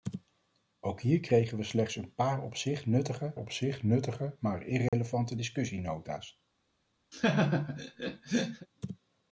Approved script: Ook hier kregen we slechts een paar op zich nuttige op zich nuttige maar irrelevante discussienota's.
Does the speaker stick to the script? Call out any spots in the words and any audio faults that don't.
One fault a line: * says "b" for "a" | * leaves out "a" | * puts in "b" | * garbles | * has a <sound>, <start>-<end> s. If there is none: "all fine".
* has a dropout, 4.9-4.9 s
* has a laugh, 7.1-8.7 s